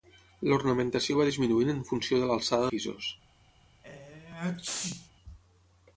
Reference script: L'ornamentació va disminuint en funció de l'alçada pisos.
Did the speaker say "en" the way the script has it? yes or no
yes